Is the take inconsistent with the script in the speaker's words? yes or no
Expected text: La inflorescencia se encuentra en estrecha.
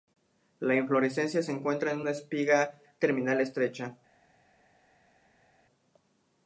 yes